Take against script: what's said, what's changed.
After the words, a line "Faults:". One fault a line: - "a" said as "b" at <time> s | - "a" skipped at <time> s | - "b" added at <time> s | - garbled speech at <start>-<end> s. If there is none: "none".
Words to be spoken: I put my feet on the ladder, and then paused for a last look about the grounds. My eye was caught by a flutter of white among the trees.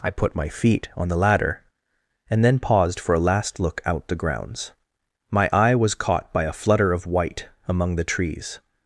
I put my feet on the ladder, and then paused for a last look out the grounds. My eye was caught by a flutter of white among the trees.
Faults:
- "about" said as "out" at 3.9 s